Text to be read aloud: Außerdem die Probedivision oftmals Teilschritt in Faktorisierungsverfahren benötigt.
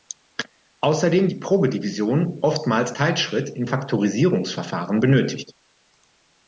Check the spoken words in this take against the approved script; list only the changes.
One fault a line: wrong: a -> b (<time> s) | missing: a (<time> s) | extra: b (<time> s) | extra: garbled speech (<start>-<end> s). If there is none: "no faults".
no faults